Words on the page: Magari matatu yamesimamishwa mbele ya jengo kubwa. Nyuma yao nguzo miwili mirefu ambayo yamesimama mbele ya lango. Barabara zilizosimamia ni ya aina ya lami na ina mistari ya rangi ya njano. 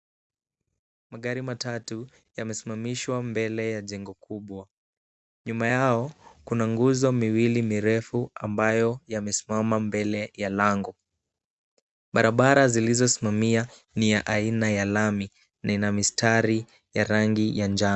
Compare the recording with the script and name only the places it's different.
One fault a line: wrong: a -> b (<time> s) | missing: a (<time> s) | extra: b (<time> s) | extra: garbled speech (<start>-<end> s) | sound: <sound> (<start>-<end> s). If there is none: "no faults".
extra: kuna (6.4 s)